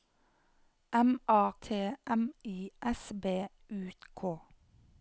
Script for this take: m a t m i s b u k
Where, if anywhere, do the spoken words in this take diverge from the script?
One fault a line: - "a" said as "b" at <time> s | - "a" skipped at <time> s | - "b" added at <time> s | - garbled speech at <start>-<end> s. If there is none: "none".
none